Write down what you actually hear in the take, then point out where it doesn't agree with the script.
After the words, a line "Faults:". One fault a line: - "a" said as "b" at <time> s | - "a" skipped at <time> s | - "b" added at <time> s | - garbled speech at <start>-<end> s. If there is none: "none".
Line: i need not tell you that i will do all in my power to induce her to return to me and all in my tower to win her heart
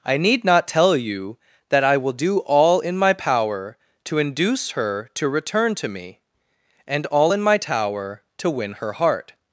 i need not tell you that i will do all in my power to induce her to return to me and all in my tower to win her heart
Faults:
none